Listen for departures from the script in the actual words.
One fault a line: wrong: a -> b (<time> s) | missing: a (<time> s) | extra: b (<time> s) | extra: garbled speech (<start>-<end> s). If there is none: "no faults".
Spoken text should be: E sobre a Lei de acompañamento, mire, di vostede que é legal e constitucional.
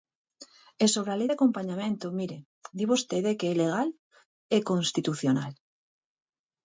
no faults